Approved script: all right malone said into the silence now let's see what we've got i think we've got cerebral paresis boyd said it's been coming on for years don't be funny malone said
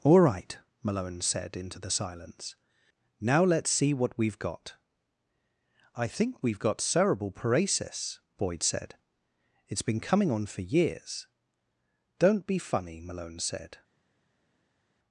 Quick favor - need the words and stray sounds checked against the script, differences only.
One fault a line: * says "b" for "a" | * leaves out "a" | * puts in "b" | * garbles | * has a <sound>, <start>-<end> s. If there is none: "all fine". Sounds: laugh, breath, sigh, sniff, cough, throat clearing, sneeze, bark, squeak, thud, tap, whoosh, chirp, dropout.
all fine